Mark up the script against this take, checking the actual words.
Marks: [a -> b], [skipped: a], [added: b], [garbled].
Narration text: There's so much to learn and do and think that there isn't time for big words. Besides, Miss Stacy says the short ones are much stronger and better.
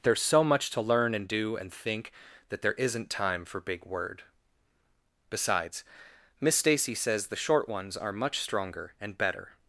There's so much to learn and do and think that there isn't time for big [words. -> word] Besides, Miss Stacy says the short ones are much stronger and better.